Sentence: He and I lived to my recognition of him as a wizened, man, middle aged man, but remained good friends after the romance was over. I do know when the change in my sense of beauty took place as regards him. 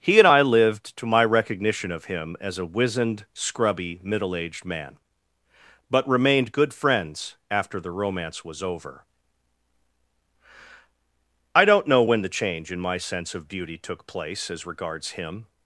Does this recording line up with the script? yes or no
no